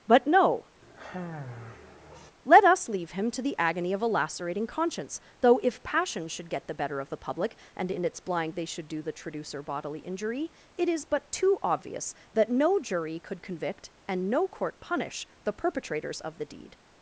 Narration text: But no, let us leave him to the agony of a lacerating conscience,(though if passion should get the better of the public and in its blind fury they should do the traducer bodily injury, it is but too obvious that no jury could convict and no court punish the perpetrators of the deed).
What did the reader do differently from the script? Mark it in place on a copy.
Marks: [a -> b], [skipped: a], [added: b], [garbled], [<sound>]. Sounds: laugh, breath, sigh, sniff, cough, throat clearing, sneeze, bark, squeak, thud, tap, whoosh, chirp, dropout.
But no, [sigh] let us leave him to the agony of a lacerating conscience,(though if passion should get the better of the public and in its blind [skipped: fury] they should do the traducer bodily injury, it is but too obvious that no jury could convict and no court punish the perpetrators of the deed).